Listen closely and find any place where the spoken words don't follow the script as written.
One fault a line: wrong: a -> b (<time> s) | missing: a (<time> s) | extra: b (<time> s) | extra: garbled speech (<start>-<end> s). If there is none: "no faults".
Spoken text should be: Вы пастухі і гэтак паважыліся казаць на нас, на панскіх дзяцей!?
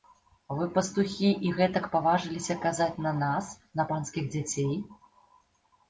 no faults